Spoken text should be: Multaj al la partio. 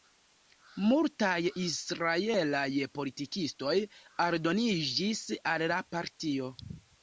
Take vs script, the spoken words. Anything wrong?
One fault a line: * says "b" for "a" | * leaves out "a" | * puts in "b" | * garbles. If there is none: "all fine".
* puts in "israelaj politikistoj aldoniĝis"